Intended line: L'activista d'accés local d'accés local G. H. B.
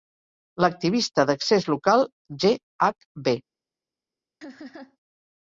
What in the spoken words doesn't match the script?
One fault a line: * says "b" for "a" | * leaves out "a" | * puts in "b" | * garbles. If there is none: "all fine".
* leaves out "d'accés local"